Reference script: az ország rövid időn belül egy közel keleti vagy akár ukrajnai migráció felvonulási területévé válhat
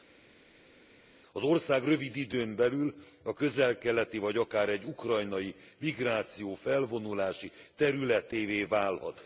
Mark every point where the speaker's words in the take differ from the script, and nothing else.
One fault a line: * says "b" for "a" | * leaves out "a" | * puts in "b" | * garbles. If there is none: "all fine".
* says "a" for "egy"
* puts in "egy"